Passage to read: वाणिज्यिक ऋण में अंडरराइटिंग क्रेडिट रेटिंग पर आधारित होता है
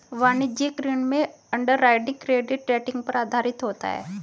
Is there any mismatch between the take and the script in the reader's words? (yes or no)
no